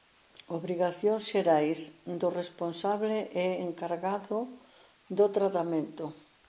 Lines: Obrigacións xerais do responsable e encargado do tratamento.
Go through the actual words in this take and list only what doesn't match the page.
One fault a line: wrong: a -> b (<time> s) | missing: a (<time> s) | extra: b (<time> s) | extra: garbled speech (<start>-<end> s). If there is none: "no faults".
no faults